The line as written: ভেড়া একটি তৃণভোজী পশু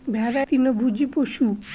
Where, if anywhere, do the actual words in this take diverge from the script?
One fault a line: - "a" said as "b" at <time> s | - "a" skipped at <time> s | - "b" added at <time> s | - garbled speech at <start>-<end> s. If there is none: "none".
- "একটি" skipped at 0.4 s